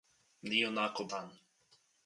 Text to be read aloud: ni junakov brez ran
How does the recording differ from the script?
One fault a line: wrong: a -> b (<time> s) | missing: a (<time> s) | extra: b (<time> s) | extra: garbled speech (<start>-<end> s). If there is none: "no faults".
missing: brez (1.1 s)